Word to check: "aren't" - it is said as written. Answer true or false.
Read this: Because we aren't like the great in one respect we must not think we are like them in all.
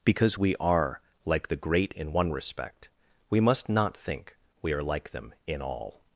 false